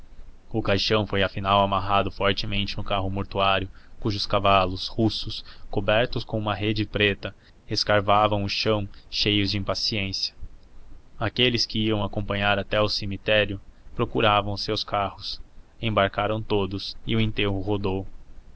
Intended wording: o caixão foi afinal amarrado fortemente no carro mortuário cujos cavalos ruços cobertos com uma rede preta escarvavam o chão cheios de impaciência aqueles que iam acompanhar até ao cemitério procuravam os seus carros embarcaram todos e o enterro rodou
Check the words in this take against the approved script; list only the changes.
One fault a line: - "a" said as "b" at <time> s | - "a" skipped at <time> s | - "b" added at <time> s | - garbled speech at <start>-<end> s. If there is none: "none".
none